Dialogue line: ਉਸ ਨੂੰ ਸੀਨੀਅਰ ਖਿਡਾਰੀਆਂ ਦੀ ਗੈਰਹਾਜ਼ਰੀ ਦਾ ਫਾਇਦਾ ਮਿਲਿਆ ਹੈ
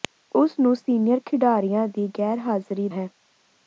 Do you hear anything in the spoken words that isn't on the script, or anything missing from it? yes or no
yes